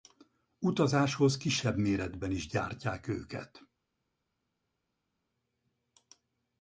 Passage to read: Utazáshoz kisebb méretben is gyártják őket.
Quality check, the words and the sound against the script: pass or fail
pass